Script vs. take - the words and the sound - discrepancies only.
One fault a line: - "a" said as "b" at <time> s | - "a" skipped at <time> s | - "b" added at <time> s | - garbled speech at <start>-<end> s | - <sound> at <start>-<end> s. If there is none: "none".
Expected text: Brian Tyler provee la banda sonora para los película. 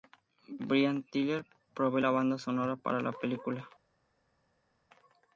- "los" said as "la" at 3.0 s